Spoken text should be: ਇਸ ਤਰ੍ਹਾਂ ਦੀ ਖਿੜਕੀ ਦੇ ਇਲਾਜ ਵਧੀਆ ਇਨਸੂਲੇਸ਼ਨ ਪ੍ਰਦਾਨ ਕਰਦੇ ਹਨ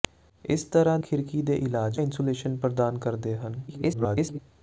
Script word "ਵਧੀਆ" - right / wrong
wrong